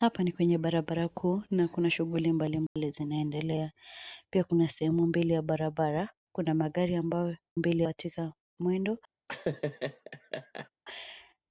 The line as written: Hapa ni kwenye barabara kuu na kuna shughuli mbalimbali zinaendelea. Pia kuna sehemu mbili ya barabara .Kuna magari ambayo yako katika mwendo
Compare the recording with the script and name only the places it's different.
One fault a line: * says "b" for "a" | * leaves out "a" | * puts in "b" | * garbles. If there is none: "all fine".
* says "mbili" for "yako"